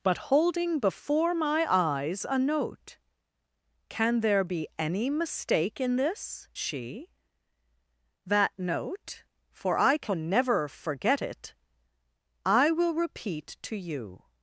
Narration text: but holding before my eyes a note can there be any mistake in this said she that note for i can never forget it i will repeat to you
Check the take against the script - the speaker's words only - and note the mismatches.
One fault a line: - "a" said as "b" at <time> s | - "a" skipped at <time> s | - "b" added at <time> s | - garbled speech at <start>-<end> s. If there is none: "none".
- "said" skipped at 6.5 s